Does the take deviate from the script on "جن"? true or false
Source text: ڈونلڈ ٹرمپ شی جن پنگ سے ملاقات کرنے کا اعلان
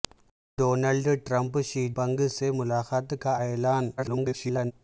true